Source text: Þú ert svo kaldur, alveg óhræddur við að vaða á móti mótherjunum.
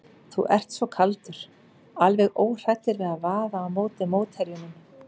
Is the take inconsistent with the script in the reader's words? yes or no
no